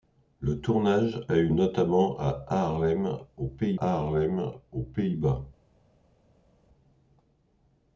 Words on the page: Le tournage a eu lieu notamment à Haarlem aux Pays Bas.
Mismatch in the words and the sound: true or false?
true